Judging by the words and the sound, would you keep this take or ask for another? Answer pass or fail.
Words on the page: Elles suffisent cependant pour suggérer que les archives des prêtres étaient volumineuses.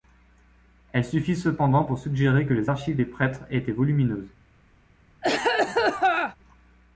fail